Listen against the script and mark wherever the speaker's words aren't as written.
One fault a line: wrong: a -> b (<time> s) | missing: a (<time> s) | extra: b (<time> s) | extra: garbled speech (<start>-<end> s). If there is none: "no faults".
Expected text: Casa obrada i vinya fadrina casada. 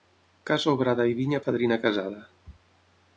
no faults